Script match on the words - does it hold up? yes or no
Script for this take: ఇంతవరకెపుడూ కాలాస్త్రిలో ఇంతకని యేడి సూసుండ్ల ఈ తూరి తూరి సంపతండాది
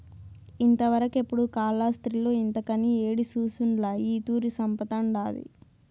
no